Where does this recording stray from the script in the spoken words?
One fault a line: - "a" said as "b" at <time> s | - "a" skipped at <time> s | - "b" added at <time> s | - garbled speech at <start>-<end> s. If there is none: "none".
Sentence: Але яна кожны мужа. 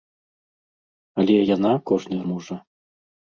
none